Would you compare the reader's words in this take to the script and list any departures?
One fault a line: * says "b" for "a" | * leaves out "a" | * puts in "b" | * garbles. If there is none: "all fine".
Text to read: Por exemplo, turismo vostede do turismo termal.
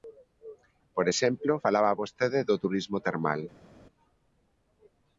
* says "falaba" for "turismo"